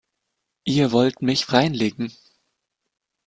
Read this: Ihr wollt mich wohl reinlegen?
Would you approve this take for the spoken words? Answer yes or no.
no